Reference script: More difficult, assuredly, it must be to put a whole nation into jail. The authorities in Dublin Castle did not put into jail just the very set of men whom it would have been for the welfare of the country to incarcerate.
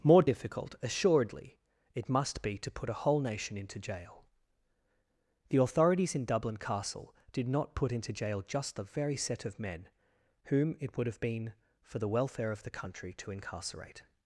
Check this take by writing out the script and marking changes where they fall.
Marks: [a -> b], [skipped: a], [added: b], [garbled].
More difficult, assuredly, it must be to put a whole nation into jail. The authorities in Dublin Castle did not put into jail just the very set of men whom it would have been for the welfare of the country to incarcerate.